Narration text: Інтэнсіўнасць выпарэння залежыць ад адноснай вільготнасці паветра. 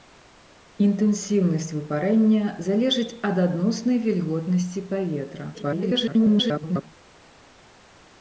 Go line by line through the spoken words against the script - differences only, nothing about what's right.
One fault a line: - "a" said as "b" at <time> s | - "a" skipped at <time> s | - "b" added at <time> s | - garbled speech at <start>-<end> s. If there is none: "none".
- garbled speech at 5.5-6.8 s